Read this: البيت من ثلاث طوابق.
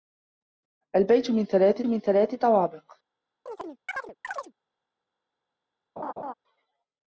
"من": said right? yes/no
yes